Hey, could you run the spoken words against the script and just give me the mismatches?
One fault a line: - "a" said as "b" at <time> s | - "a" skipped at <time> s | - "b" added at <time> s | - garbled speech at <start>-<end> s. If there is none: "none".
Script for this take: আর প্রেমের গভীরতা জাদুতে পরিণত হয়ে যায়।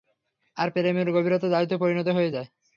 none